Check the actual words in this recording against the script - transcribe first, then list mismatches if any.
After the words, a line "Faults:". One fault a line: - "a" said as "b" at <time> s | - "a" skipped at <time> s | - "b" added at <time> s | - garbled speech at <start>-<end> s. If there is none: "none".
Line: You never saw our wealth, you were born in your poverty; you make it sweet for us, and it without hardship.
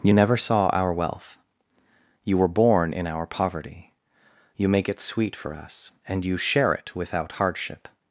You never saw our wealth, you were born in our poverty; you make it sweet for us, and you share it without hardship.
Faults:
- "your" said as "our" at 3.1 s
- "you share" added at 6.2 s